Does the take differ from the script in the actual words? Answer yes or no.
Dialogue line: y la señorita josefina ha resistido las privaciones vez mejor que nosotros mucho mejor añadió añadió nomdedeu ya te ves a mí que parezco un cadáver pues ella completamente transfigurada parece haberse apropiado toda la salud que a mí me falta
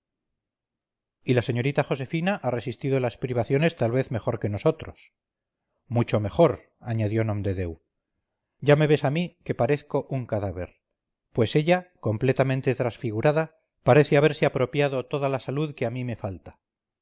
yes